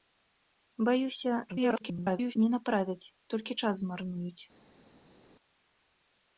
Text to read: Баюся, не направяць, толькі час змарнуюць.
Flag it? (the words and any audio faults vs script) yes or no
yes